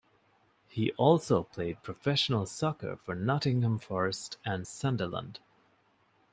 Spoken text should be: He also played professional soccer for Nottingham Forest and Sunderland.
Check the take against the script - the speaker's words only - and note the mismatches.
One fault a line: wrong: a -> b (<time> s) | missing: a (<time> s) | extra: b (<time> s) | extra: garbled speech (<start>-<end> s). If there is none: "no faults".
no faults